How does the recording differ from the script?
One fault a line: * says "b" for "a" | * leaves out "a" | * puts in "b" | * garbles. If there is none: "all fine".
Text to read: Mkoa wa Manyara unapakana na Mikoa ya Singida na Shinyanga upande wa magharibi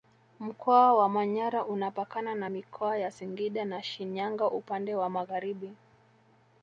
all fine